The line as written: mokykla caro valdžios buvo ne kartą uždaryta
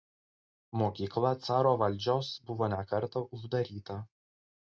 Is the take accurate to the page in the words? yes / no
yes